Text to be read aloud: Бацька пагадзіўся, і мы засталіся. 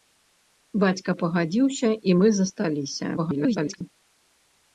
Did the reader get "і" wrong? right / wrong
right